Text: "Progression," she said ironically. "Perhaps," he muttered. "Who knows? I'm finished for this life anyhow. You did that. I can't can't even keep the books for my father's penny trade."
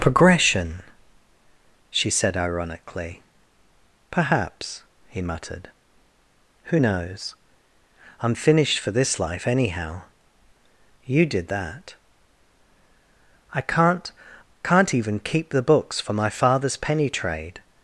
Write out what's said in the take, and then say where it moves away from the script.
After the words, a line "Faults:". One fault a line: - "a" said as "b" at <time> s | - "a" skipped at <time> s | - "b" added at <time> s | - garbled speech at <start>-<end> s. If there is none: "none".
"Progression," she said ironically. "Perhaps," he muttered. "Who knows? I'm finished for this life anyhow. You did that. I can't can't even keep the books for my father's penny trade."
Faults:
none